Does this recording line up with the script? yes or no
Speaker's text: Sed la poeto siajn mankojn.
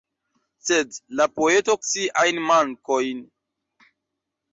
yes